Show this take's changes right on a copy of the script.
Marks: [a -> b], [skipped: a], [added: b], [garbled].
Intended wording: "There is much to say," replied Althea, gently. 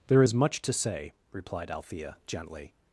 "There is much to say," replied Althea, gently.